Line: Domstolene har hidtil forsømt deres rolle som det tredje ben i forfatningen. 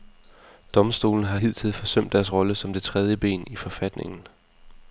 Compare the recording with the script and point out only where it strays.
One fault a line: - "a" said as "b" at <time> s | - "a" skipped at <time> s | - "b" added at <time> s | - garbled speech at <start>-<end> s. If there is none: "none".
none